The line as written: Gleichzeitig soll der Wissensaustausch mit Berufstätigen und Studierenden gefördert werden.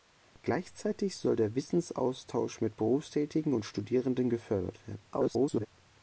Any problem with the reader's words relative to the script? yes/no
yes